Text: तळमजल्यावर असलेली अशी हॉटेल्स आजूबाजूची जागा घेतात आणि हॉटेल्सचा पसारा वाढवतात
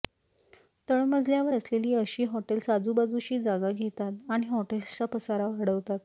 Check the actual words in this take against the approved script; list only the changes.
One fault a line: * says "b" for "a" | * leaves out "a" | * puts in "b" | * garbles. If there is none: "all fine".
all fine